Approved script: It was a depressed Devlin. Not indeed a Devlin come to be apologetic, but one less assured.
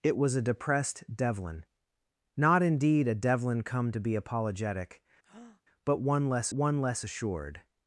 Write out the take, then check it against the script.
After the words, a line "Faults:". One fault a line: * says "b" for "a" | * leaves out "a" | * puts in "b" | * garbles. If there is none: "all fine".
It was a depressed Devlin. Not indeed a Devlin come to be apologetic, but one less one less assured.
Faults:
* puts in "one less"